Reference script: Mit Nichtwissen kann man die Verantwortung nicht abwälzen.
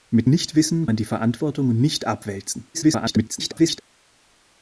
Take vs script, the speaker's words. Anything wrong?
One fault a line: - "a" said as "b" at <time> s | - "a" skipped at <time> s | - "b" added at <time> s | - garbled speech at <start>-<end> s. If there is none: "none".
- "kann" skipped at 0.9 s
- garbled speech at 2.7-3.8 s